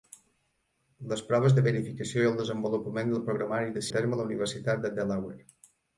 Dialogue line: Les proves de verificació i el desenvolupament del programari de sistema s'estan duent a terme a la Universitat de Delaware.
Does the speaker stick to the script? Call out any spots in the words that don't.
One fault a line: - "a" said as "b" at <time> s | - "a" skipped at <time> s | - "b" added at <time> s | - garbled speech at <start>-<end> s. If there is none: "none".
- "sistema s'estan duent" skipped at 3.9 s